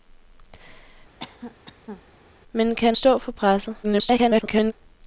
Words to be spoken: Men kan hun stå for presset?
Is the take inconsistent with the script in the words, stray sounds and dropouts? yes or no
yes